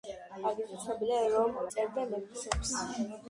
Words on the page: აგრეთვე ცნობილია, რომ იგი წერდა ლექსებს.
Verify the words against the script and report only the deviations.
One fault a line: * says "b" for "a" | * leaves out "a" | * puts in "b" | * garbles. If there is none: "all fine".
* leaves out "იგი"